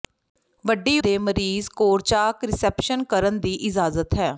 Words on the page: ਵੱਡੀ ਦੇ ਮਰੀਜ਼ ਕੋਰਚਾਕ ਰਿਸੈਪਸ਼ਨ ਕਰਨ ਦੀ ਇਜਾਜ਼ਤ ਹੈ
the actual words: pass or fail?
pass